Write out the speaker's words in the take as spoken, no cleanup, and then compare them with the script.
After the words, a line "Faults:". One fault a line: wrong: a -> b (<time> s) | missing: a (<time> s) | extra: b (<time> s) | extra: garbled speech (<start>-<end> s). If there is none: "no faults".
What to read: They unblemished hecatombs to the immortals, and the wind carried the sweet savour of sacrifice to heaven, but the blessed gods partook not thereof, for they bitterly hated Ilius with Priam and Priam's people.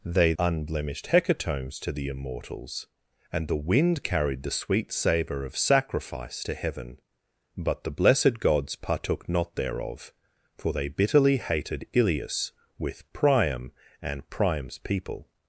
They unblemished hecatombs to the immortals, and the wind carried the sweet savour of sacrifice to heaven, but the blessed gods partook not thereof, for they bitterly hated Ilius with Priam and Priam's people.
Faults:
no faults